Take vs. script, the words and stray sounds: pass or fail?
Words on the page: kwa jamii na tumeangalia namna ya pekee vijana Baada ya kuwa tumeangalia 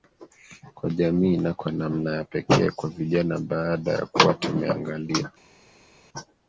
fail